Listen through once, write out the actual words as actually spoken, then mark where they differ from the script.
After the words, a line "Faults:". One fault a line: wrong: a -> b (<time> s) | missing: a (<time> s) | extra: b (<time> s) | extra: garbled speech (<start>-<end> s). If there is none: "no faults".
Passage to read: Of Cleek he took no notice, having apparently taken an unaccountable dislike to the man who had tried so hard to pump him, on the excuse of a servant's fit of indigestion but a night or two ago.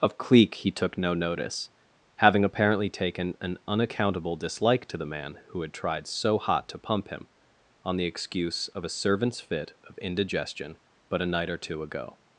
Of Cleek he took no notice, having apparently taken an unaccountable dislike to the man who had tried so hot to pump him, on the excuse of a servant's fit of indigestion but a night or two ago.
Faults:
wrong: hard -> hot (6.4 s)